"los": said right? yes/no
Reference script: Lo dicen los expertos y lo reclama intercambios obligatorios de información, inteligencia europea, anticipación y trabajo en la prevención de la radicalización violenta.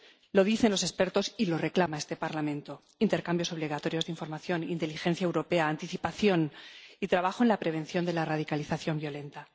yes